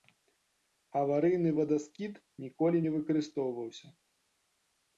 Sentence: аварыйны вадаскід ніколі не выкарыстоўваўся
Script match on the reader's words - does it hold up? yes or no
yes